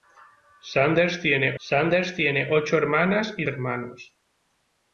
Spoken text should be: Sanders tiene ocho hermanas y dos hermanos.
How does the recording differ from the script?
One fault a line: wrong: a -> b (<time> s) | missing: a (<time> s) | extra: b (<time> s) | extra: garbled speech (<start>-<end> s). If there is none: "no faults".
extra: sanders tiene (1.6 s)
missing: dos (3.5 s)